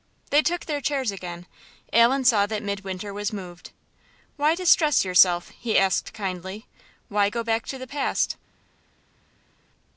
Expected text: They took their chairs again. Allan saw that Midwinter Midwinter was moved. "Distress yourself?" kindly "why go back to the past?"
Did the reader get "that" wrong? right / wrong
right